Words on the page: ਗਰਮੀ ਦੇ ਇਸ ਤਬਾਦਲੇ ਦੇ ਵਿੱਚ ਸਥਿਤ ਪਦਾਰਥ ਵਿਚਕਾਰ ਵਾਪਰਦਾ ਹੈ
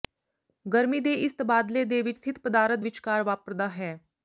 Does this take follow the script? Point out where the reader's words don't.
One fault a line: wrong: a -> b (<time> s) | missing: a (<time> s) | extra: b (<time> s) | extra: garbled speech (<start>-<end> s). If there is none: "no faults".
no faults